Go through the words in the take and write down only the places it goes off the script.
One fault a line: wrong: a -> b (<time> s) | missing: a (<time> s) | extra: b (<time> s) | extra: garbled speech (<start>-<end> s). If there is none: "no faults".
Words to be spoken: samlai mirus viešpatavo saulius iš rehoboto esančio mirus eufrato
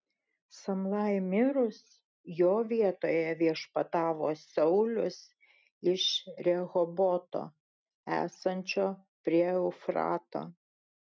extra: jo vietoje (2.4 s)
wrong: mirus -> prie (9.3 s)